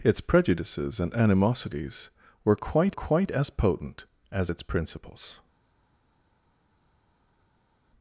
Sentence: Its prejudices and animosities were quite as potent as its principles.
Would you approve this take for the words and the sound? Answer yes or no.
no